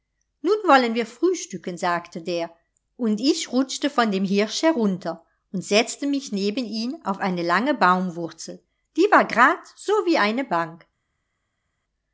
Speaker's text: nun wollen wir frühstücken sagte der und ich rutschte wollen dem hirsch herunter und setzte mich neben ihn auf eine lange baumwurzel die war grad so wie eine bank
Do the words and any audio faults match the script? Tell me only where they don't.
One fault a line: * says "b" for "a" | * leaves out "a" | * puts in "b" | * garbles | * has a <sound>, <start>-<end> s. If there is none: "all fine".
* says "von" for "wollen"